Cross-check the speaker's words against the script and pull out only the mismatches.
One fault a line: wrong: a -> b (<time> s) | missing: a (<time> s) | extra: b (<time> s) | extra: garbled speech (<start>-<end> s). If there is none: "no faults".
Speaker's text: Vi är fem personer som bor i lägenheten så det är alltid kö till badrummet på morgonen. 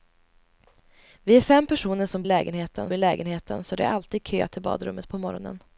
wrong: bor -> lägenheten (2.2 s)